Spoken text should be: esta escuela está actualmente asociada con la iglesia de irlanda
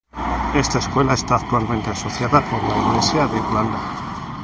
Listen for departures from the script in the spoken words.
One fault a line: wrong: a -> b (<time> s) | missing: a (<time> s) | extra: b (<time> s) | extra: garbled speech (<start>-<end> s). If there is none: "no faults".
no faults